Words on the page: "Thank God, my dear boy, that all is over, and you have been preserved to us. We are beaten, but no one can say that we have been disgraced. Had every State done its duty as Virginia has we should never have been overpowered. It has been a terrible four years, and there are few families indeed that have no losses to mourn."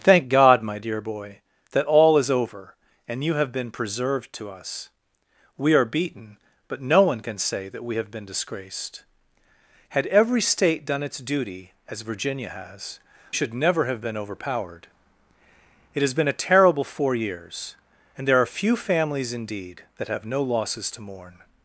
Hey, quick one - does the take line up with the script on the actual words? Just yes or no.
no